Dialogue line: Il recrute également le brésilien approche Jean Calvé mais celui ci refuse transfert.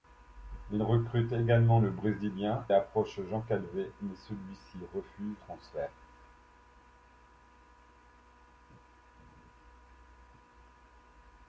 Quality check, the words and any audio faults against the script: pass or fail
pass